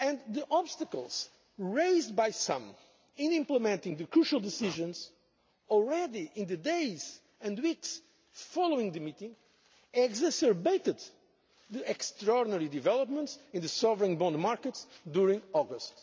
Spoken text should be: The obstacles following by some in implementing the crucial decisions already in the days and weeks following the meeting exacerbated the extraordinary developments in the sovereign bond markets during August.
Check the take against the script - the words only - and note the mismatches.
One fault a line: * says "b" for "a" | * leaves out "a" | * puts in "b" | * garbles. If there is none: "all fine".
* says "raised" for "following"